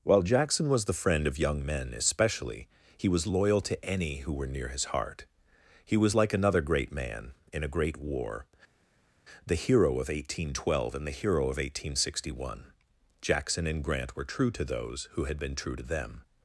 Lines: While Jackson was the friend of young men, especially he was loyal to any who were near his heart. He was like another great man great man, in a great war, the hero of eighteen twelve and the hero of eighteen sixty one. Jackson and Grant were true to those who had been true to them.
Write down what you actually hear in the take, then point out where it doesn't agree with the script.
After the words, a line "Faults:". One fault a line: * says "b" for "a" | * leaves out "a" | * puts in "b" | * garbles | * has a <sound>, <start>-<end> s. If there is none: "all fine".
While Jackson was the friend of young men, especially he was loyal to any who were near his heart. He was like another great man, in a great war, the hero of eighteen twelve and the hero of eighteen sixty one. Jackson and Grant were true to those who had been true to them.
Faults:
* leaves out "great man"